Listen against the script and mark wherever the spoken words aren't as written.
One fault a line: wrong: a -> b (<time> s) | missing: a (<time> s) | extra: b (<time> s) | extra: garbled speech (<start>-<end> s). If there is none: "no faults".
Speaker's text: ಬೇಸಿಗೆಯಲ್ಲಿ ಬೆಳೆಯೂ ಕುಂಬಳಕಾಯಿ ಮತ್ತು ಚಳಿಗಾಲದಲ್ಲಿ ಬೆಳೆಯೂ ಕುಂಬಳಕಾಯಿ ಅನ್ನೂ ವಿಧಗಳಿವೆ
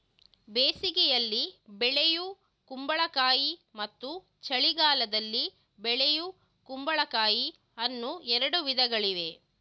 extra: ಎರಡು (8.4 s)